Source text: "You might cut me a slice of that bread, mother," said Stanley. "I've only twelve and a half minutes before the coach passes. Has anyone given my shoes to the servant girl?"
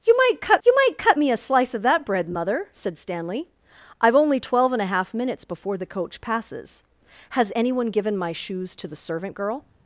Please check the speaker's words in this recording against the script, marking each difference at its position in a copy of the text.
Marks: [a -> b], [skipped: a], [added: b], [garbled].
"You might cut [added: you might cut] me a slice of that bread, mother," said Stanley. "I've only twelve and a half minutes before the coach passes. Has anyone given my shoes to the servant girl?"